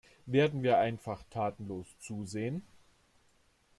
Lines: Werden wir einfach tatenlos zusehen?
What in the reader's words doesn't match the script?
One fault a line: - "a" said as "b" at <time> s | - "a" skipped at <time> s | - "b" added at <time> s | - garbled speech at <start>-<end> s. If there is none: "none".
none